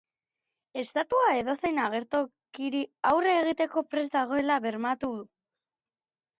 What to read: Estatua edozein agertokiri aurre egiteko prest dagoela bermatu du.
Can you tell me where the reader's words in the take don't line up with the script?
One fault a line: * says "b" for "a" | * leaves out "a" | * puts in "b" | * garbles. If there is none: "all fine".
all fine